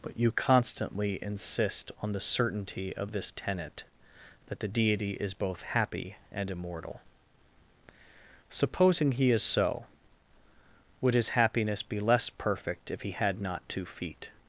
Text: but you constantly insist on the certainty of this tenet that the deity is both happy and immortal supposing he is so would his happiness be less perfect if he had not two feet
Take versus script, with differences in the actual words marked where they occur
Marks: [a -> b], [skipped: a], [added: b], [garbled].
but you constantly insist on the certainty of this tenet that the deity is both happy and immortal supposing he is so would his happiness be less perfect if he had not two feet